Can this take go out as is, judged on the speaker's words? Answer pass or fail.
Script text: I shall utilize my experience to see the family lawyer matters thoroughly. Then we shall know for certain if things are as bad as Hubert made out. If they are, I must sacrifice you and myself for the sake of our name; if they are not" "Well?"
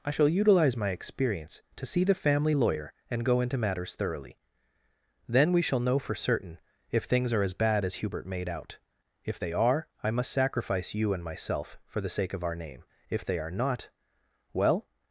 fail